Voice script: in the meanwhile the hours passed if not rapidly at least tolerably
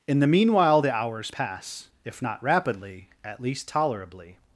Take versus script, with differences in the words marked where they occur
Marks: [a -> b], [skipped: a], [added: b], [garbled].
in the meanwhile the hours [passed -> pass] if not rapidly at least tolerably